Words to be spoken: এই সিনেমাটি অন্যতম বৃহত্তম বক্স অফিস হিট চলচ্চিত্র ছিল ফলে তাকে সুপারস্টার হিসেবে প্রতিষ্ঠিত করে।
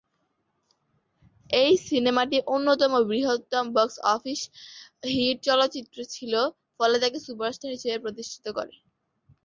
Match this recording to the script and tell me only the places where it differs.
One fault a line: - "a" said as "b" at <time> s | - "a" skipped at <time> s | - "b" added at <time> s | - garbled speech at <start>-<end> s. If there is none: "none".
none